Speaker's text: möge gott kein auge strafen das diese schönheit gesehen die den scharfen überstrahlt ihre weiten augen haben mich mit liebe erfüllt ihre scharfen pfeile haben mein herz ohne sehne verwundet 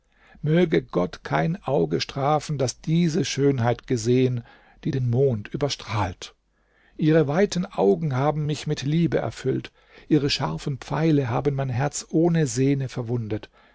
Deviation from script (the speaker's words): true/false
true